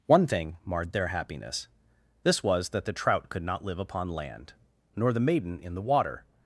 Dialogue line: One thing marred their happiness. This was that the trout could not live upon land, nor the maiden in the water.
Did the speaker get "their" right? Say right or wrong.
right